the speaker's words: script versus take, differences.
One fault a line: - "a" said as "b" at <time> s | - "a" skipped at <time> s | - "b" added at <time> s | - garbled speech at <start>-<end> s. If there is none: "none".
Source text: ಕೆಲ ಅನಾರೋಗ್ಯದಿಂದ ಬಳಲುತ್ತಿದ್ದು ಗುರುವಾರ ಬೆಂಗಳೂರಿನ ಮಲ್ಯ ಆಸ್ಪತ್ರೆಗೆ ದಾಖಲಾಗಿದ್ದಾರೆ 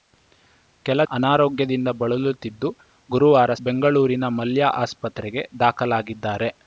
none